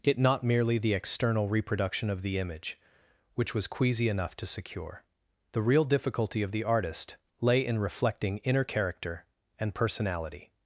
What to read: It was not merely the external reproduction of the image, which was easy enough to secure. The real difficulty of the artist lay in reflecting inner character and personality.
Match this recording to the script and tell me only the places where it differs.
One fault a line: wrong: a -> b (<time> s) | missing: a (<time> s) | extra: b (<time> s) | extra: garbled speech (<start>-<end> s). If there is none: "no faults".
missing: was (0.2 s)
wrong: easy -> queasy (3.7 s)